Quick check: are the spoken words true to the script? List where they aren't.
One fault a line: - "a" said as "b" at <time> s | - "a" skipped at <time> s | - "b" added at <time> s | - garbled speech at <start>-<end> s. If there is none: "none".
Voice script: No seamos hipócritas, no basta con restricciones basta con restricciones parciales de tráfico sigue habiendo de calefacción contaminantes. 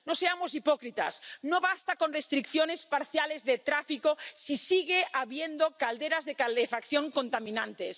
- "basta con restricciones" skipped at 2.9 s
- "si" added at 4.3 s
- "calderas" added at 5.8 s